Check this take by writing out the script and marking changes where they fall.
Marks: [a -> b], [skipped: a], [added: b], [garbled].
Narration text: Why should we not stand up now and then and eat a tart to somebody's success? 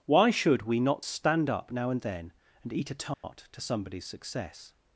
Why should we not stand up now and then and eat a tart to somebody's success?